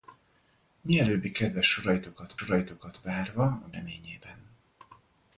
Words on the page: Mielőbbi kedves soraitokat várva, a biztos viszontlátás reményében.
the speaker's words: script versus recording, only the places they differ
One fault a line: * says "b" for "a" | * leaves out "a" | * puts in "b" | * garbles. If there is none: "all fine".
* puts in "soraitokat"
* leaves out "biztos viszontlátás"